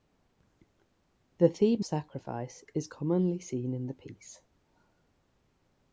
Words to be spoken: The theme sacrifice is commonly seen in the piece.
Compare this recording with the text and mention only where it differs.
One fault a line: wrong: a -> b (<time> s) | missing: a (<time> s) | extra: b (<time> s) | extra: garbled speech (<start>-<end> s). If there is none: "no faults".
no faults